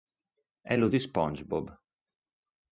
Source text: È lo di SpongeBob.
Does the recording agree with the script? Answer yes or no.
yes